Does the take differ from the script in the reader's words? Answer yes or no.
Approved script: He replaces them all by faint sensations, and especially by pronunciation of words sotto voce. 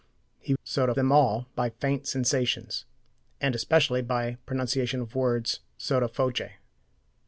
yes